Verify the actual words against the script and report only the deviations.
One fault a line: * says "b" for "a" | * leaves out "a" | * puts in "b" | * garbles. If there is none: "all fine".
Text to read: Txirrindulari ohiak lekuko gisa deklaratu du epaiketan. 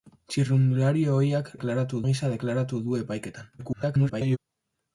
* says "deklaratu" for "lekuko"
* garbles